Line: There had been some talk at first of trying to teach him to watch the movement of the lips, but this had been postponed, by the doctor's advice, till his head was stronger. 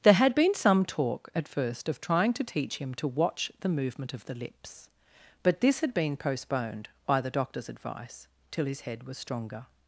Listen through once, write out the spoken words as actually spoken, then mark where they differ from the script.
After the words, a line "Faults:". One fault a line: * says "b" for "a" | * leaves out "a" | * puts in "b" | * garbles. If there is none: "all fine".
There had been some talk at first of trying to teach him to watch the movement of the lips, but this had been postponed, by the doctor's advice, till his head was stronger.
Faults:
all fine